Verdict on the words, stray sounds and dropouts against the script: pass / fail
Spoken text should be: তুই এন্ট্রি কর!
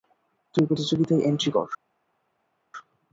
fail